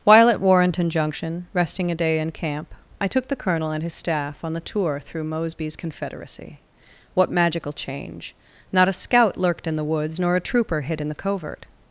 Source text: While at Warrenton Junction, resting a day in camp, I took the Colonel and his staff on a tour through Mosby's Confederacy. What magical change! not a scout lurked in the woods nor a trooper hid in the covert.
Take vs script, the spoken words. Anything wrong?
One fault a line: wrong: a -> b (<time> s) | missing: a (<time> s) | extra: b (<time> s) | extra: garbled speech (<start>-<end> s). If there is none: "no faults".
wrong: a -> the (4.5 s)